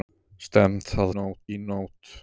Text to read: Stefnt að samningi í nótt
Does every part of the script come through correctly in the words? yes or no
no